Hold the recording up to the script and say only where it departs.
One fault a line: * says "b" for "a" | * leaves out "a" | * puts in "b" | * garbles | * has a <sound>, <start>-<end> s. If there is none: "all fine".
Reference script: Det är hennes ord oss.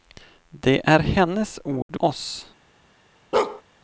* has a dropout, 1.8-1.9 s
* has a bark, 3.3-3.6 s